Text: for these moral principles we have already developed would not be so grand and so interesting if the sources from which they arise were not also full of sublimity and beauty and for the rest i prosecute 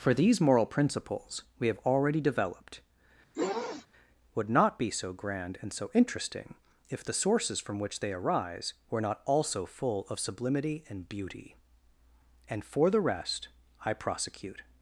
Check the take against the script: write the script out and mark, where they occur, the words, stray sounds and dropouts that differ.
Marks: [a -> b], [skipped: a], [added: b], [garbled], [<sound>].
for these moral principles we have already developed [sniff] would not be so grand and so interesting if the sources from which they arise were not also full of sublimity and beauty and for the rest i prosecute